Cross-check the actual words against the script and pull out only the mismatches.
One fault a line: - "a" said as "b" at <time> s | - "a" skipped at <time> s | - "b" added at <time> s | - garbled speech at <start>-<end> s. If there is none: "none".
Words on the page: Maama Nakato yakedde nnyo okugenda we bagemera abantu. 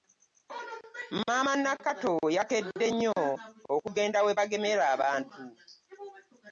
none